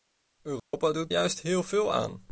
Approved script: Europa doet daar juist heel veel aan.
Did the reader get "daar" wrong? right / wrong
wrong